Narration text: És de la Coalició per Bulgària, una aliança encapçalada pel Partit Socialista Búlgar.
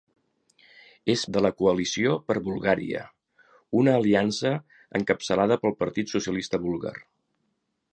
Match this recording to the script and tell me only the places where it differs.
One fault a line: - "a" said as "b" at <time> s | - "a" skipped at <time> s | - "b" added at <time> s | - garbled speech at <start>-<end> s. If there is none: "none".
none